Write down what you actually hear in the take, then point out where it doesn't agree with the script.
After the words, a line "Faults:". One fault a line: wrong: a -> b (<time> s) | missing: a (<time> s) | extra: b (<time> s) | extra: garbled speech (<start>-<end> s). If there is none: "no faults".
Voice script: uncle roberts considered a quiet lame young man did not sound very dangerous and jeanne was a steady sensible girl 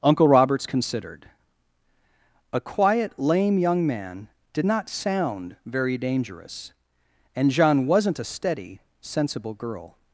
uncle roberts considered a quiet lame young man did not sound very dangerous and jeanne wasn't a steady sensible girl
Faults:
wrong: was -> wasn't (7.9 s)